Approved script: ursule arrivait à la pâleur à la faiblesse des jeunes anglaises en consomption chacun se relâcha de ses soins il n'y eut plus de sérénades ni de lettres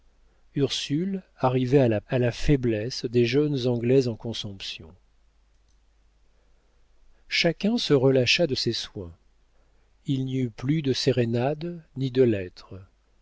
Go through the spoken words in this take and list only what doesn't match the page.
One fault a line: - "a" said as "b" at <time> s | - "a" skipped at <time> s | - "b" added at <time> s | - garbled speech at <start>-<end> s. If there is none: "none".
- "pâleur" skipped at 2.0 s